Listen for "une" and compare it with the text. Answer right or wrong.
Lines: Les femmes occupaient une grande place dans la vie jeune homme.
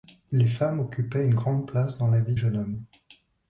right